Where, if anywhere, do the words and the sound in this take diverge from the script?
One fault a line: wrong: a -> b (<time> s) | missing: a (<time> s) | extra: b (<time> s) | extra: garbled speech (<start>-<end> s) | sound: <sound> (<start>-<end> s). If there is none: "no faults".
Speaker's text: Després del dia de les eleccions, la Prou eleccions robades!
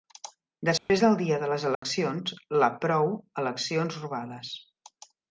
sound: dropout (0.8-0.9 s)
sound: dropout (1.7-1.8 s)